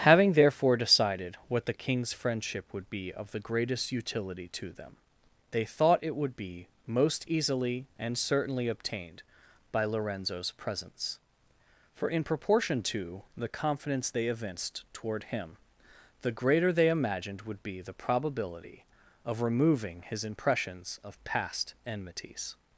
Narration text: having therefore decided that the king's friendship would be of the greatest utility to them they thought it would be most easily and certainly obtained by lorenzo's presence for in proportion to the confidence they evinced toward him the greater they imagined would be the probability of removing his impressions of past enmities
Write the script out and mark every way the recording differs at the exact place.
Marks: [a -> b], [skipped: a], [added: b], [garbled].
having therefore decided [that -> what] the king's friendship would be of the greatest utility to them they thought it would be most easily and certainly obtained by lorenzo's presence for in proportion to the confidence they evinced toward him the greater they imagined would be the probability of removing his impressions of past enmities